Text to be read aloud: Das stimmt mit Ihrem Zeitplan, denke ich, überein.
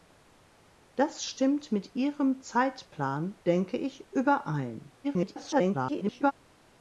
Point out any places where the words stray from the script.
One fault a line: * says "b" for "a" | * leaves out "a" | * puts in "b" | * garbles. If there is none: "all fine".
* garbles